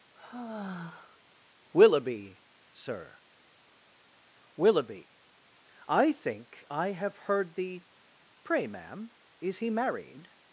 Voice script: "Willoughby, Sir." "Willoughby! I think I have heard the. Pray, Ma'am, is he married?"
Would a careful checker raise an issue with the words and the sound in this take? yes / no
yes